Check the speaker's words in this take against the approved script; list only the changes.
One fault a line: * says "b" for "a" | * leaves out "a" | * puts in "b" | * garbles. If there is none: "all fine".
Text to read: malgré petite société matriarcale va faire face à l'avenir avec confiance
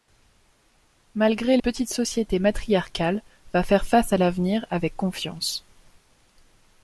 all fine